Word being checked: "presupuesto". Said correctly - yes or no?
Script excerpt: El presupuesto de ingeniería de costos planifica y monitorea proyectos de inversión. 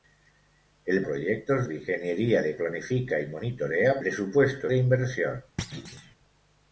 no